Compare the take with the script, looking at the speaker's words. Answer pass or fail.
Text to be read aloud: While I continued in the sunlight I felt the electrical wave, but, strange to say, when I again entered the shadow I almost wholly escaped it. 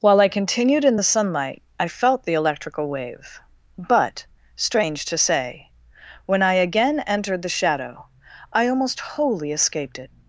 pass